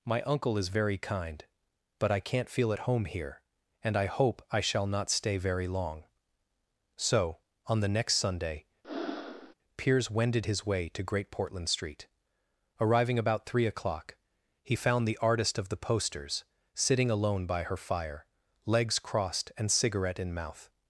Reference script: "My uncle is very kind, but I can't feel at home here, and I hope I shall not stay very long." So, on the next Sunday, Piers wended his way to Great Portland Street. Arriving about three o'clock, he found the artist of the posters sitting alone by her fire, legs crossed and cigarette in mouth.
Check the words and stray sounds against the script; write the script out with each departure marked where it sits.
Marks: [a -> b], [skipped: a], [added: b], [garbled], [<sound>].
"My uncle is very kind, but I can't feel at home here, and I hope I shall not stay very long." So, on the next Sunday, [breath] Piers wended his way to Great Portland Street. Arriving about three o'clock, he found the artist of the posters sitting alone by her fire, legs crossed and cigarette in mouth.